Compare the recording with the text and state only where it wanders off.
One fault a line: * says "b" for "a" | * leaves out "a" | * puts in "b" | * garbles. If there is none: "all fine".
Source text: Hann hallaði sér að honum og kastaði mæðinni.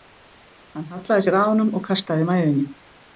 all fine